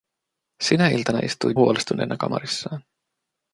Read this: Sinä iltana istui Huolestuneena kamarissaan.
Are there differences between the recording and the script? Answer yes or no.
no